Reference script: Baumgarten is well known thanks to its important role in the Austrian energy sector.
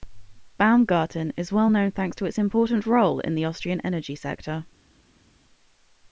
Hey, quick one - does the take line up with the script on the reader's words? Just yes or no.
yes